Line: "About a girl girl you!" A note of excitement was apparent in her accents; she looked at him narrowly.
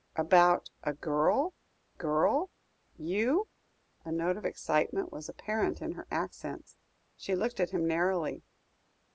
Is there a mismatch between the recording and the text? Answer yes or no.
no